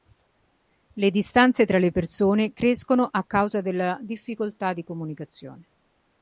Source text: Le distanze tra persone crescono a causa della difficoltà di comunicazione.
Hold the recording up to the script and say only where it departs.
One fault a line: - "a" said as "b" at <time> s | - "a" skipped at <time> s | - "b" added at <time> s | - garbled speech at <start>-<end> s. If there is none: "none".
- "le" added at 1.8 s